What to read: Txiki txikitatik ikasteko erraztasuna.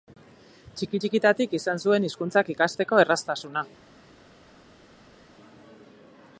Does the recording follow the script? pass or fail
fail